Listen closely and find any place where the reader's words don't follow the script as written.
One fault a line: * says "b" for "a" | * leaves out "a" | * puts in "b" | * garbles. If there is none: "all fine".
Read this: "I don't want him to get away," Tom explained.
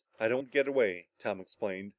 * leaves out "want"